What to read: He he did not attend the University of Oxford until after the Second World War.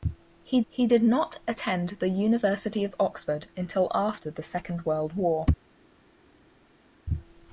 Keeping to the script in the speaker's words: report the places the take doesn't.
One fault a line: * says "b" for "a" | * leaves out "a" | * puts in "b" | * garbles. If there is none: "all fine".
all fine